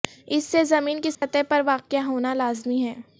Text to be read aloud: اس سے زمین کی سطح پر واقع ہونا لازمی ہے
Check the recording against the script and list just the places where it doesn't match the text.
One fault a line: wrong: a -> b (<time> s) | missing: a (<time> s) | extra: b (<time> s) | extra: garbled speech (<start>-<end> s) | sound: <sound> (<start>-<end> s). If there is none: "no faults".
sound: dropout (1.1-1.2 s)